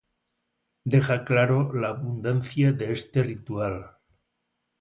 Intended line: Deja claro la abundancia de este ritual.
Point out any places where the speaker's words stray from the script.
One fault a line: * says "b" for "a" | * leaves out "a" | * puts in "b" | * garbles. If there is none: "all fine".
all fine